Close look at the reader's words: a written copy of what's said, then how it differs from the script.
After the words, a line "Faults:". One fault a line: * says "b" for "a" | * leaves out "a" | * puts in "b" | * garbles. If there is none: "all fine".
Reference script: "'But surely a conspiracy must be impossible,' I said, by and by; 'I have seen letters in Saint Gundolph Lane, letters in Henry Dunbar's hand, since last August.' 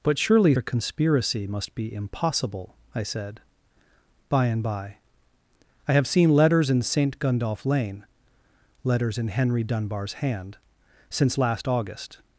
"'But surely a conspiracy must be impossible,' I said, by and by; 'I have seen letters in Saint Gundolph Lane, letters in Henry Dunbar's hand, since last August.'
Faults:
all fine